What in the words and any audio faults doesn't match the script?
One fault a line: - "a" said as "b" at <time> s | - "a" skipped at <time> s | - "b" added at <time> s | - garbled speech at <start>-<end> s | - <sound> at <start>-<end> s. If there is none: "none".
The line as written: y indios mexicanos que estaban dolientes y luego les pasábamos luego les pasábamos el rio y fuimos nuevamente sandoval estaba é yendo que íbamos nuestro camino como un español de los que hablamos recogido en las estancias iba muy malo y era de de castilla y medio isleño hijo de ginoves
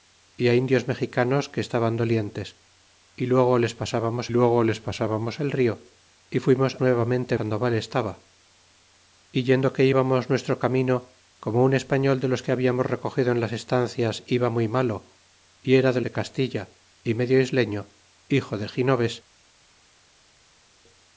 none